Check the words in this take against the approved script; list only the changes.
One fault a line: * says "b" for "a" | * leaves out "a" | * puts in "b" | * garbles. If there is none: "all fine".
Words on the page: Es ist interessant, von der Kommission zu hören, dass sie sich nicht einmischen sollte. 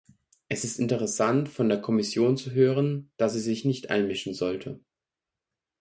all fine